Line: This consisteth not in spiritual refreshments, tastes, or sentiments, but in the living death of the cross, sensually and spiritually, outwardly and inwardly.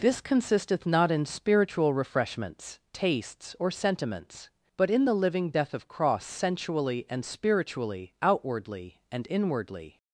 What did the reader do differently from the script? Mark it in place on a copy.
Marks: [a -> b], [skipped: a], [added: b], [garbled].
This consisteth not in spiritual refreshments, tastes, or sentiments, but in the living death of [skipped: the] cross, sensually and spiritually, outwardly and inwardly.